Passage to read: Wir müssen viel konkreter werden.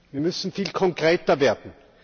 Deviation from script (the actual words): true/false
false